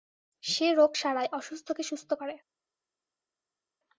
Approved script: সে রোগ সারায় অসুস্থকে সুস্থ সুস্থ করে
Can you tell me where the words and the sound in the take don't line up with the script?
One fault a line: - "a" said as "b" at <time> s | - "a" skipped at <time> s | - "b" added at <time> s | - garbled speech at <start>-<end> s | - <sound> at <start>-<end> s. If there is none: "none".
- "সুস্থ" skipped at 2.1 s